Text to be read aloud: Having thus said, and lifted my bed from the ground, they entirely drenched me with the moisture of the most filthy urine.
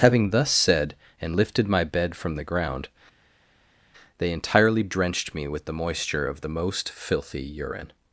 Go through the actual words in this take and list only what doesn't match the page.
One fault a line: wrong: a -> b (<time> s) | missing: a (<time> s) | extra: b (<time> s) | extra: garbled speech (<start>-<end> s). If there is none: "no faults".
no faults